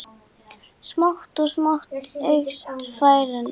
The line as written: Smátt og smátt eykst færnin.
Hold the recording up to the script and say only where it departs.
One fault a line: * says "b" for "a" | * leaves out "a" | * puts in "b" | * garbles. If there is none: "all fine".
all fine